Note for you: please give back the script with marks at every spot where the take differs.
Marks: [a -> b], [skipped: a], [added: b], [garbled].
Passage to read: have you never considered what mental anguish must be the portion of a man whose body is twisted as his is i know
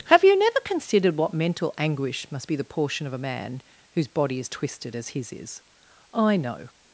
have you never considered what mental anguish must be the portion of a man whose body is twisted as his is i know